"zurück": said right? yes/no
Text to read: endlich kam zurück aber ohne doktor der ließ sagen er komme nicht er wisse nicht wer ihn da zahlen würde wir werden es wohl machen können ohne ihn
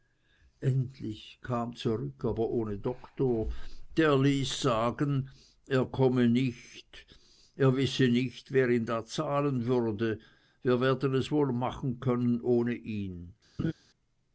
yes